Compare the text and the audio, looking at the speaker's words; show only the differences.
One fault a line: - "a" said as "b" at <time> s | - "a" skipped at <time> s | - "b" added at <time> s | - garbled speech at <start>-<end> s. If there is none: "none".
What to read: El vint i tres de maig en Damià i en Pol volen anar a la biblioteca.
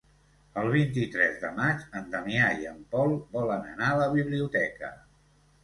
none